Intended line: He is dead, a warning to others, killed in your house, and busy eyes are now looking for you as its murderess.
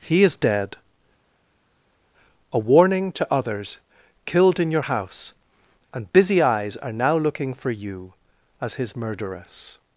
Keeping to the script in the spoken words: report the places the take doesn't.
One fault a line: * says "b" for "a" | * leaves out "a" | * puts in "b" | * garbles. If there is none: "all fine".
* says "his" for "its"